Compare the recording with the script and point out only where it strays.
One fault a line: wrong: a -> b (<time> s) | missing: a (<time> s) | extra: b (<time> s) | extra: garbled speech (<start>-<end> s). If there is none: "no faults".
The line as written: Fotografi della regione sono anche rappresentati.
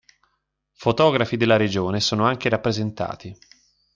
no faults